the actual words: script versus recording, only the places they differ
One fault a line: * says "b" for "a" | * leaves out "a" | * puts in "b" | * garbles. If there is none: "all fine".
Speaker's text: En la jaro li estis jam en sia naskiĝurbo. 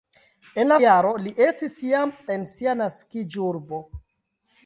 all fine